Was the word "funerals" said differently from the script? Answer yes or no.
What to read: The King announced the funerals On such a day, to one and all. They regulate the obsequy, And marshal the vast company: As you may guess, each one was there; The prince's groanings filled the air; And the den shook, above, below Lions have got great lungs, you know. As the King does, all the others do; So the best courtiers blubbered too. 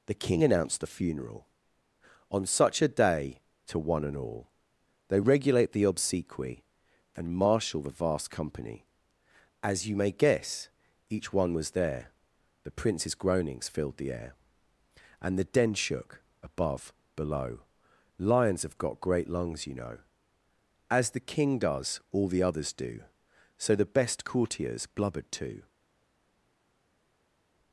yes